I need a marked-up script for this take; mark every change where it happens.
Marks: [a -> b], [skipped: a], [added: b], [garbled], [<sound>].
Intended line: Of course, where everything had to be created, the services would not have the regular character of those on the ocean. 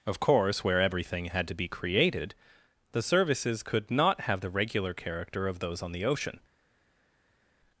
Of course, where everything had to be created, the services [would -> could] not have the regular character of those on the ocean.